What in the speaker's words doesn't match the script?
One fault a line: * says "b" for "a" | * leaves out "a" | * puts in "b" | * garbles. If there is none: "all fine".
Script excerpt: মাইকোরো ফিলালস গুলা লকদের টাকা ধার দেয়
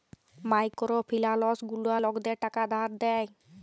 all fine